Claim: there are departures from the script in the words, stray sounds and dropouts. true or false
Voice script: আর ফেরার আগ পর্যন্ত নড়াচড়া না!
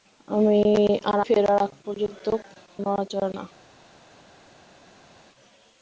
false